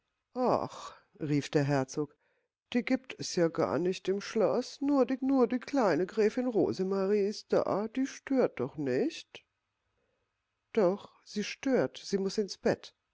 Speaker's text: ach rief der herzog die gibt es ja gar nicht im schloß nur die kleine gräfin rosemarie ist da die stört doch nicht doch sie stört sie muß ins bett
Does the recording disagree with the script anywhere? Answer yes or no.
yes